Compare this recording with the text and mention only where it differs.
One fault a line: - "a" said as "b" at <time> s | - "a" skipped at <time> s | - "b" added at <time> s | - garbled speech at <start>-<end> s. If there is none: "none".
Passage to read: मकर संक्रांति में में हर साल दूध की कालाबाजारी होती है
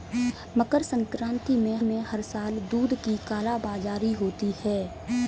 none